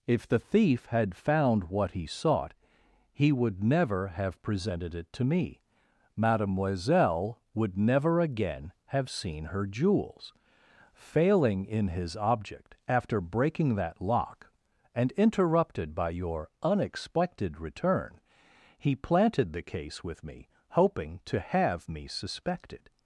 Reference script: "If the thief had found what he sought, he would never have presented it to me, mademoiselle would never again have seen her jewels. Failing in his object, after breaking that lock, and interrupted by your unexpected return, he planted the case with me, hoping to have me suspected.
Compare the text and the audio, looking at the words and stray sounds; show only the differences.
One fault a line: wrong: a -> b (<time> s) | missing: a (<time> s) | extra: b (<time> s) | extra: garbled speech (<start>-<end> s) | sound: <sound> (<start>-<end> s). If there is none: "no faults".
no faults